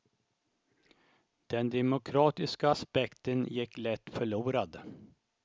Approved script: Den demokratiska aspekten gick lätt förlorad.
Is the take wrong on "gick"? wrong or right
right